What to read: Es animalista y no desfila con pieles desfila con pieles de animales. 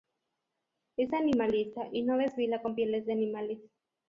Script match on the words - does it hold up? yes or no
no